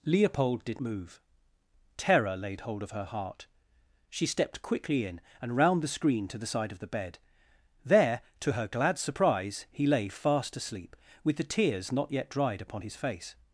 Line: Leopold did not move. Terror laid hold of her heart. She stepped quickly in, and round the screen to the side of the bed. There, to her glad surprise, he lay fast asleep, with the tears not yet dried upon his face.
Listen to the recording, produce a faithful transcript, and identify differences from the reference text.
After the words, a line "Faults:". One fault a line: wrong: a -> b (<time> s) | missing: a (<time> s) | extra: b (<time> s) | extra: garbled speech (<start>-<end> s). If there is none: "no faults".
Leopold did move. Terror laid hold of her heart. She stepped quickly in, and round the screen to the side of the bed. There, to her glad surprise, he lay fast asleep, with the tears not yet dried upon his face.
Faults:
missing: not (0.8 s)